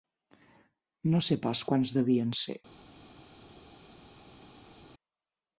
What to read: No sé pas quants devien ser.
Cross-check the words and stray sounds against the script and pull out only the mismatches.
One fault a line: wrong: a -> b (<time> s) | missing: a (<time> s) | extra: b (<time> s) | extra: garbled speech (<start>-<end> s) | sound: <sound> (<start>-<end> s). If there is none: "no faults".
no faults